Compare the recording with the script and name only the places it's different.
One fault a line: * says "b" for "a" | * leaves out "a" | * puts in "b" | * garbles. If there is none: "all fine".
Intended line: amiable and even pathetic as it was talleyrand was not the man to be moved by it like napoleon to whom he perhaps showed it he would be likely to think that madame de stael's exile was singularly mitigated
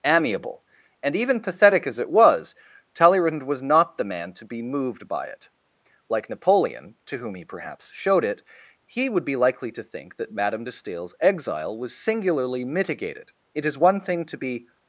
* puts in "it is one thing to be"